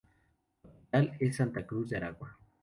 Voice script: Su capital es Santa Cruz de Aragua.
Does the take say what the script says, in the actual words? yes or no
yes